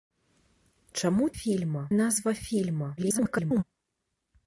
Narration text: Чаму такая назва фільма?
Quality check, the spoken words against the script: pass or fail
fail